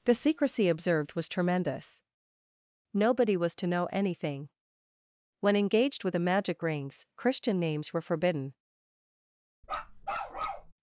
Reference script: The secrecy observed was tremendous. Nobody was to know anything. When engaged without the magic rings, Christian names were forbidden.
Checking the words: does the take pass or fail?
fail